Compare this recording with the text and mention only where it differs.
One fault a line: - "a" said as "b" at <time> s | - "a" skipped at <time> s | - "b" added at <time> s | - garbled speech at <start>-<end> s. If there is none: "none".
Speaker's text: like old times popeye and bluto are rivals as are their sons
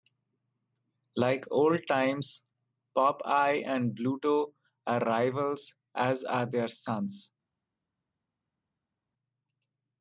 none